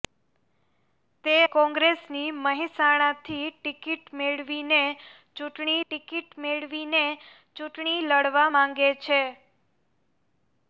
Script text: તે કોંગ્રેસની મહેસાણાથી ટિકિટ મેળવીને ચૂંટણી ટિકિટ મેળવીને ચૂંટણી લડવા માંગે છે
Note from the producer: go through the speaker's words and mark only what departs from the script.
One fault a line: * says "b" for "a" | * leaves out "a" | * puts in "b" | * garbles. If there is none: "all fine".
all fine